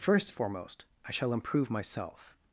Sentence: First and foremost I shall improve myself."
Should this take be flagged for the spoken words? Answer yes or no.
yes